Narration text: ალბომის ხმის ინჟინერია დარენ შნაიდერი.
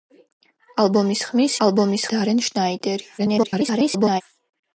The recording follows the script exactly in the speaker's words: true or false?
false